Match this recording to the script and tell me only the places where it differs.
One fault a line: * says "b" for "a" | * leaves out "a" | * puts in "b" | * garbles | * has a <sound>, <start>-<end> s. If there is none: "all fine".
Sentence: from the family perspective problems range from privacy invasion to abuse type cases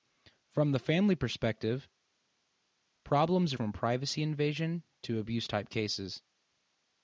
* leaves out "range"